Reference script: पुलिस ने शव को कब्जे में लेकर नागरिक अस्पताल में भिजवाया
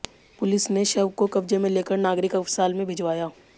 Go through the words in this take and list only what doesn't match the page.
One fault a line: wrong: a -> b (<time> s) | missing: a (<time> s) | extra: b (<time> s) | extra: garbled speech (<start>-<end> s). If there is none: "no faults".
no faults